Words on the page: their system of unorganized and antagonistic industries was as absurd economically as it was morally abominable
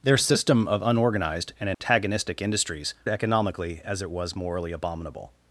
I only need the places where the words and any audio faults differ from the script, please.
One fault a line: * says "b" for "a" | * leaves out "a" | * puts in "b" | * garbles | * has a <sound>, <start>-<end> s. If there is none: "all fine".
* has a dropout, 1.7-1.8 s
* leaves out "was as absurd"